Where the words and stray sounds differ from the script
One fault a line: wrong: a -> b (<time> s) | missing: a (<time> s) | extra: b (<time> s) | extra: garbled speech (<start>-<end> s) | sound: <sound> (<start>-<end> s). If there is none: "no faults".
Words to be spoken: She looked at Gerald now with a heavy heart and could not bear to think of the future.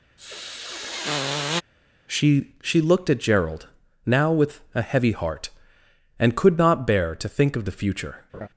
sound: sniff (0.2-1.6 s)
extra: she (2.6 s)
sound: laugh (8.3-8.5 s)